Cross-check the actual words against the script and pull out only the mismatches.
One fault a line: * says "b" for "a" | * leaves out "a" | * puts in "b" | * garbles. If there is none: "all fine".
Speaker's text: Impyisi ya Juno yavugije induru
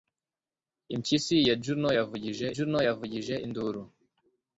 * puts in "Juno yavugije"